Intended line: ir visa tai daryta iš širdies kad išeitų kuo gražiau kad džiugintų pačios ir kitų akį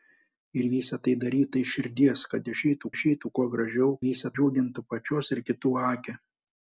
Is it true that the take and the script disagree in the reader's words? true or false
true